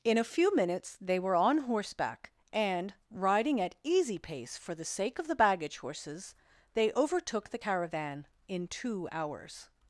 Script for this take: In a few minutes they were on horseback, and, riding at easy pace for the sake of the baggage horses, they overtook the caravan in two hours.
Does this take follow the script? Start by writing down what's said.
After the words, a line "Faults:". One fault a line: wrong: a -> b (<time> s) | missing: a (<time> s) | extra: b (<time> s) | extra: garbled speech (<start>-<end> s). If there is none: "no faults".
In a few minutes they were on horseback, and, riding at easy pace for the sake of the baggage horses, they overtook the caravan in two hours.
Faults:
no faults